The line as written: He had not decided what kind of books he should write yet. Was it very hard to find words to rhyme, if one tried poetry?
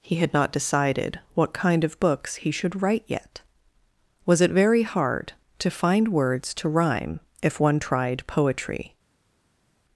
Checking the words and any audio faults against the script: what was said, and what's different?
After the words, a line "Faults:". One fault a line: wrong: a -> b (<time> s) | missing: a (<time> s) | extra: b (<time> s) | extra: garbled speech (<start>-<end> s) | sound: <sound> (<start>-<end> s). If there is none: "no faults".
He had not decided what kind of books he should write yet. Was it very hard to find words to rhyme, if one tried poetry?
Faults:
no faults